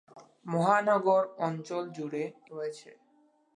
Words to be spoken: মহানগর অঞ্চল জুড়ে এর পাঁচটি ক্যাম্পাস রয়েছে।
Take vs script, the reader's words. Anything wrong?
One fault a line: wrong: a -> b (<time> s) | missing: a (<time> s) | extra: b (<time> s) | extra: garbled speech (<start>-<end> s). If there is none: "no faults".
missing: এর পাঁচটি ক্যাম্পাস (2.2 s)